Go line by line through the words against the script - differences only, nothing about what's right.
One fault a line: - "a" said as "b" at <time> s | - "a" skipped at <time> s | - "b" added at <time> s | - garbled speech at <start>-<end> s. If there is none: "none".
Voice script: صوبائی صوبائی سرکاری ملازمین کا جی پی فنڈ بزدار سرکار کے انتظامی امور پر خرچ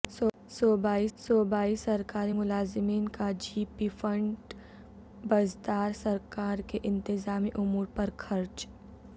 none